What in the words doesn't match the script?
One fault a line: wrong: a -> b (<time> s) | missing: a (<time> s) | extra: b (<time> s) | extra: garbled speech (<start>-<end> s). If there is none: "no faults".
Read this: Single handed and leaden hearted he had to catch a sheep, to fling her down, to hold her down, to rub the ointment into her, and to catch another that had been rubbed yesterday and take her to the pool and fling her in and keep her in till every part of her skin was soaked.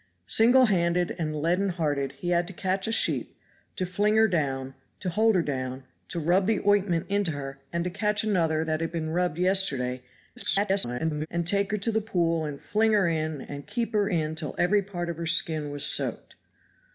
extra: garbled speech (10.4-11.3 s)